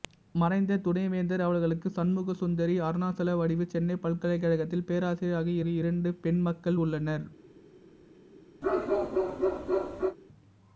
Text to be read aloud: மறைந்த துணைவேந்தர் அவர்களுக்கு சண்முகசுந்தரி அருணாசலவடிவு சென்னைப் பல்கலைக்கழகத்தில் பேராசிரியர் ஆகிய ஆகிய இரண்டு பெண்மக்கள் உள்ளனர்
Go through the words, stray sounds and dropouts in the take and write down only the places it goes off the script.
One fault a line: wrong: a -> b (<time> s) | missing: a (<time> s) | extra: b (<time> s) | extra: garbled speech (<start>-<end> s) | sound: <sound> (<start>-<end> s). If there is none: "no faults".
sound: bark (8.6-10.2 s)